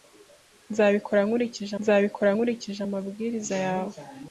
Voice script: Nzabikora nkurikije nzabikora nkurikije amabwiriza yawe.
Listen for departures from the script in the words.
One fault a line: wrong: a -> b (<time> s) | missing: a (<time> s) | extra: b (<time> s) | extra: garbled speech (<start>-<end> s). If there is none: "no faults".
no faults